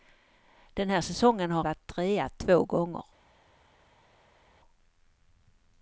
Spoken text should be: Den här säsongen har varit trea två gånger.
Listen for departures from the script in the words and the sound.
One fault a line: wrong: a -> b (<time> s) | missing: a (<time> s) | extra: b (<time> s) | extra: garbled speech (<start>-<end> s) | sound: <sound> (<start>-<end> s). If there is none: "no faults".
no faults